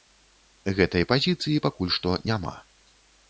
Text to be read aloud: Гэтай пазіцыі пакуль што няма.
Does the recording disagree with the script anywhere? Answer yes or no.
no